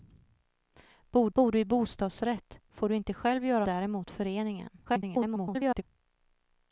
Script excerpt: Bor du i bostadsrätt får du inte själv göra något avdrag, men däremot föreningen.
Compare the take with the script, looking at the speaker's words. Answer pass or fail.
fail